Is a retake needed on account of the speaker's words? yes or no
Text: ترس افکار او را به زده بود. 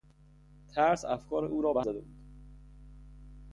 no